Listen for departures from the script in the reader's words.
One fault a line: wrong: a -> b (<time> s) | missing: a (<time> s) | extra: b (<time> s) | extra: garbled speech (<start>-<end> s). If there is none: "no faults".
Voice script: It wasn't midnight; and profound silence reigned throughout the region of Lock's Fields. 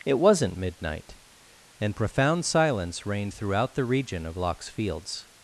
no faults